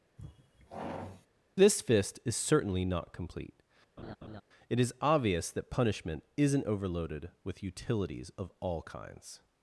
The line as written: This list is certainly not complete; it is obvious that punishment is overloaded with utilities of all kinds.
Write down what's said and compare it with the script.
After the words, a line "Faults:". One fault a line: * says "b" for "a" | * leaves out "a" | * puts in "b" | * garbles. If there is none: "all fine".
This fist is certainly not complete; it is obvious that punishment isn't overloaded with utilities of all kinds.
Faults:
* says "fist" for "list"
* says "isn't" for "is"